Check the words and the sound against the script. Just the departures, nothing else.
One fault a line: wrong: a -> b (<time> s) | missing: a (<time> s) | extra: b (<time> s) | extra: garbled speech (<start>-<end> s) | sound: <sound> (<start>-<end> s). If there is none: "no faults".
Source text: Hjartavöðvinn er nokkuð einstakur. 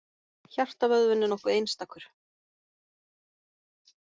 no faults